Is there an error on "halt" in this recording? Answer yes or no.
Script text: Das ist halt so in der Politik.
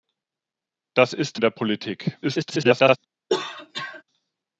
yes